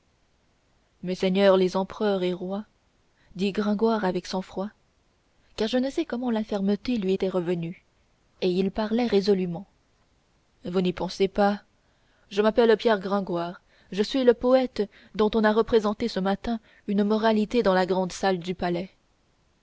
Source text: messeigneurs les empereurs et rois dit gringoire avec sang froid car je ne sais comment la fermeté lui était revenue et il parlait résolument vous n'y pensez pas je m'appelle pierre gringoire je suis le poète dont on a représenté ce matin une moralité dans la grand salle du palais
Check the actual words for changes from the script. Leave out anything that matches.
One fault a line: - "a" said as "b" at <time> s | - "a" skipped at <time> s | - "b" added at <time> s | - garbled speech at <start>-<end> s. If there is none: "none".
none